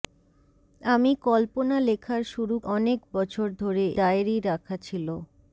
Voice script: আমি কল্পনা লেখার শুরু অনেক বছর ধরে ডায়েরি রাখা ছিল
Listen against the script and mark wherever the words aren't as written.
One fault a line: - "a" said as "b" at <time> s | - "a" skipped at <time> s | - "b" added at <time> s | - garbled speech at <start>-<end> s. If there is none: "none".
none